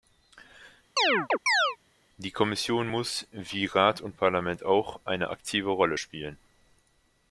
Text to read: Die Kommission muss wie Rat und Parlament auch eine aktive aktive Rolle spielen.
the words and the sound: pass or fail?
fail